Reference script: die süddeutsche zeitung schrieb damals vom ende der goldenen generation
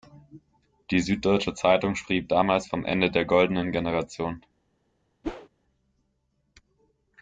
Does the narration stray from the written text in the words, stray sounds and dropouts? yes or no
yes